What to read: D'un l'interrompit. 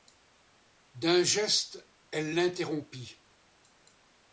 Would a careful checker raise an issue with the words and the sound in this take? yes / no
yes